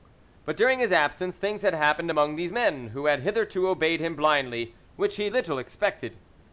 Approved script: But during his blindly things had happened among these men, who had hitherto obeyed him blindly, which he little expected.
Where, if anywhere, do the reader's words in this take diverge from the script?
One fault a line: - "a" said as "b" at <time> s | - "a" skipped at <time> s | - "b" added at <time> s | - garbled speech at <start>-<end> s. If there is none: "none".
- "blindly" said as "absence" at 0.9 s